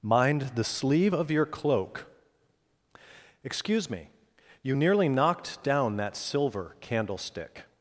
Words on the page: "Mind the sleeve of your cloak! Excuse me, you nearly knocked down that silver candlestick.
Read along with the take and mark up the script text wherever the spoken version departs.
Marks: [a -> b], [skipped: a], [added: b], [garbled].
"Mind the sleeve of your cloak! Excuse me, you nearly knocked down that silver candlestick.